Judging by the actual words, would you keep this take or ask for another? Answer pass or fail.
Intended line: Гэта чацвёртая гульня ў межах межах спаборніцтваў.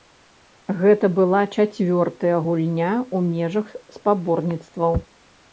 fail